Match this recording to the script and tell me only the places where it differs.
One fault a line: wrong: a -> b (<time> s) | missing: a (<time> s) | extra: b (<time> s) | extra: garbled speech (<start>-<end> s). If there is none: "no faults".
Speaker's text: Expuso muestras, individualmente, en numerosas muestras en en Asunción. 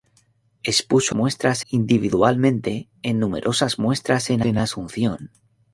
no faults